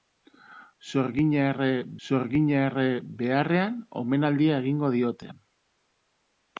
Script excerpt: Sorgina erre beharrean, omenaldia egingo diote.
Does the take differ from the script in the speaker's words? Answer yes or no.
yes